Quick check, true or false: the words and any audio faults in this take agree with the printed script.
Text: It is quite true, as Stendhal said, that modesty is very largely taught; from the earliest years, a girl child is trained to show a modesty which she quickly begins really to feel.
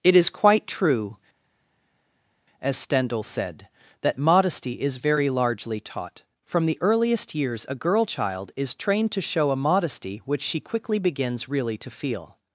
true